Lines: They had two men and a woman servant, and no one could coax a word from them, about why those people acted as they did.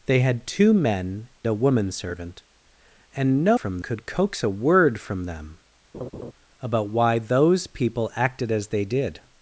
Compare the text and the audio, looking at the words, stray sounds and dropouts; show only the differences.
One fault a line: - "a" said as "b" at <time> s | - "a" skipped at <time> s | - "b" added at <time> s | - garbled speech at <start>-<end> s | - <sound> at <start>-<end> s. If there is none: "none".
- "and" skipped at 1.3 s
- "one" said as "from" at 3.5 s
- laugh at 5.9-6.3 s